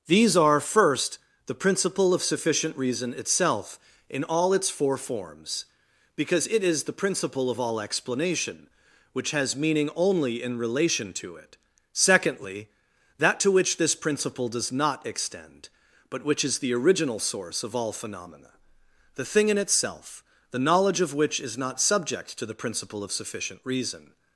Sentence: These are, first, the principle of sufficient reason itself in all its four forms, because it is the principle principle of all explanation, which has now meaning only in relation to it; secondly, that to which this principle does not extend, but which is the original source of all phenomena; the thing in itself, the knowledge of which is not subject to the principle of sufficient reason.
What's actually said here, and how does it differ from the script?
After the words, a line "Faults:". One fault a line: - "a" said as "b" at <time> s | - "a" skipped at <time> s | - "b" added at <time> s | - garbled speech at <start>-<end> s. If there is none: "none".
These are, first, the principle of sufficient reason itself in all its four forms, because it is the principle of all explanation, which has meaning only in relation to it; secondly, that to which this principle does not extend, but which is the original source of all phenomena; the thing in itself, the knowledge of which is not subject to the principle of sufficient reason.
Faults:
- "principle" skipped at 7.5 s
- "now" skipped at 9.6 s